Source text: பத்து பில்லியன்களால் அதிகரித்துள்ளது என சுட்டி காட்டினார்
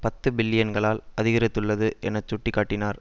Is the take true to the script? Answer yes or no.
yes